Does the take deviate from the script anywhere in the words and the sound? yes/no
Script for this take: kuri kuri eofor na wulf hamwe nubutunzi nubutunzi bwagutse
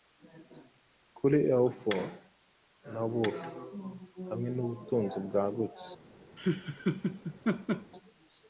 yes